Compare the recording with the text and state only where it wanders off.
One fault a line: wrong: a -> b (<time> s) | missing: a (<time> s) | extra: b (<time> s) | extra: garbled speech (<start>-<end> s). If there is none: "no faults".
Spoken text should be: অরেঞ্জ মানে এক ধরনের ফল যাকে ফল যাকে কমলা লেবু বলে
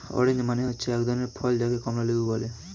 extra: হচ্ছে (0.7 s)
missing: ফল যাকে (1.8 s)